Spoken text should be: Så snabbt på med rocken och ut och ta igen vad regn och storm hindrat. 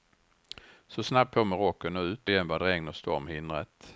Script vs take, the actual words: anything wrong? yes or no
yes